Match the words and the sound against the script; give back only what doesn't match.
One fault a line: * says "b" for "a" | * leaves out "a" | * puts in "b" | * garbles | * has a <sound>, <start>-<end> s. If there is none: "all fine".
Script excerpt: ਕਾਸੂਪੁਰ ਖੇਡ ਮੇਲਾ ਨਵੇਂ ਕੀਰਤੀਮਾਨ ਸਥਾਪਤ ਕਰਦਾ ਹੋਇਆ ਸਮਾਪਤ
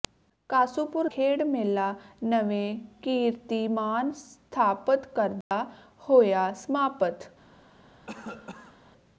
* has a dropout, 5.4-5.5 s
* has a cough, 8.1-8.8 s